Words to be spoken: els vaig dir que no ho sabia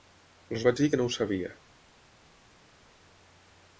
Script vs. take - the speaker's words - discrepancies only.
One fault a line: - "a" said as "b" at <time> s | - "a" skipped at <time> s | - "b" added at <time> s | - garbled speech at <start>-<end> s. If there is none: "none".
none